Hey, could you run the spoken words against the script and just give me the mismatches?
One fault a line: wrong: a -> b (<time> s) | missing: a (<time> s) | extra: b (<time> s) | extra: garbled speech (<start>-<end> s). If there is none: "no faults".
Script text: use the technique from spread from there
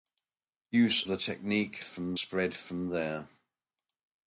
no faults